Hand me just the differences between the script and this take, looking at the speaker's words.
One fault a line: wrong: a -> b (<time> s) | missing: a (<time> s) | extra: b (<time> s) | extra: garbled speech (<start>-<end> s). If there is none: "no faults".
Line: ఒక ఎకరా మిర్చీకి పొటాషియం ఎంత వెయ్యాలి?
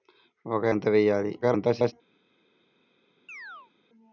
missing: ఎకరా మిర్చీకి పొటాషియం (0.6 s)
extra: garbled speech (1.4-1.9 s)